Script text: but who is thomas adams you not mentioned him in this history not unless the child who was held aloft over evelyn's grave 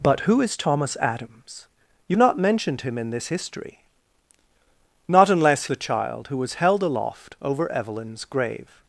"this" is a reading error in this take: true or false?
false